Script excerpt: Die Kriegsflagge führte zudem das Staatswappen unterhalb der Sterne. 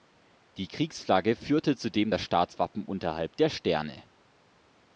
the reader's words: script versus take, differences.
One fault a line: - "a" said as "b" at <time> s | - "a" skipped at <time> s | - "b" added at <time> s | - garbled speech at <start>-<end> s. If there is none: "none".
none